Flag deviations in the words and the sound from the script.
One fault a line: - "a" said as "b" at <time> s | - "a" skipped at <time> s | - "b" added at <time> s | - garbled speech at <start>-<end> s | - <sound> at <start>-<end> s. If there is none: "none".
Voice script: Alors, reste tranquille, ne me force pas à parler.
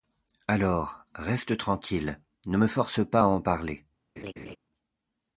- "en" added at 3.3 s
- laugh at 4.2-4.6 s